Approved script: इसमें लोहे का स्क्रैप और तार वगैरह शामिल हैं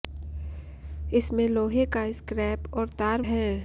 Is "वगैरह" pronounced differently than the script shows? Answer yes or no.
yes